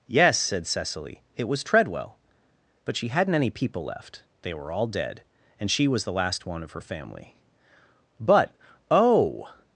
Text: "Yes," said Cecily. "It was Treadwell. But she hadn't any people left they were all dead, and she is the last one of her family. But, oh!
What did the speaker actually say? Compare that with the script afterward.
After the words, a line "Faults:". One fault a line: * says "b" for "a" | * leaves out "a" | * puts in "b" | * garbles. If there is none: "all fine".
"Yes," said Cecily. "It was Treadwell. But she hadn't any people left they were all dead, and she was the last one of her family. But, oh!
Faults:
* says "was" for "is"